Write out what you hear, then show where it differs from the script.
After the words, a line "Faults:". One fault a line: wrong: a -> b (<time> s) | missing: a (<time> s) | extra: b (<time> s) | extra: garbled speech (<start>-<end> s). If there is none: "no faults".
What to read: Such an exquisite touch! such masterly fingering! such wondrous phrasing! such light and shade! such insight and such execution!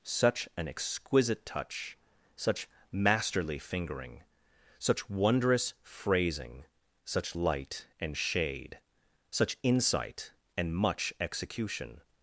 Such an exquisite touch! such masterly fingering! such wondrous phrasing! such light and shade! such insight and much execution!
Faults:
wrong: such -> much (10.7 s)